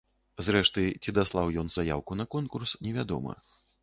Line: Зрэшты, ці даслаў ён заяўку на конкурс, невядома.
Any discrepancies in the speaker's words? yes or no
no